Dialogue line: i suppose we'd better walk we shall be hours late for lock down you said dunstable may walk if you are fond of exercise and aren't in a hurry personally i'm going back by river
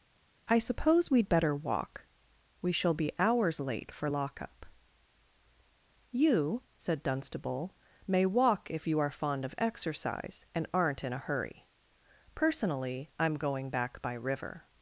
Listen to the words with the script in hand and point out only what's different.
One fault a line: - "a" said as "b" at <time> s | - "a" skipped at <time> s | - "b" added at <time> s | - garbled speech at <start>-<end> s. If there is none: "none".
- "down" said as "up" at 4.4 s